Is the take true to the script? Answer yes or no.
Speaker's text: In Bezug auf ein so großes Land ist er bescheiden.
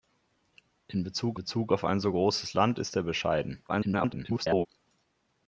no